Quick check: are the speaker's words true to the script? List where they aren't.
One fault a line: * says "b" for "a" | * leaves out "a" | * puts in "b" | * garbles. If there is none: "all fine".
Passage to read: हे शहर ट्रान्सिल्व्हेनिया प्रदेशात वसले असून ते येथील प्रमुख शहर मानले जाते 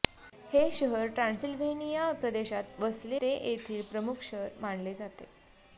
* leaves out "असून"